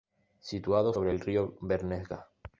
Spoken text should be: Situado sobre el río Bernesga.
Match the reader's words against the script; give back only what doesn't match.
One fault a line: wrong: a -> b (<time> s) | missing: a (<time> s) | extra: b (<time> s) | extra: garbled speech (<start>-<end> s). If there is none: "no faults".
no faults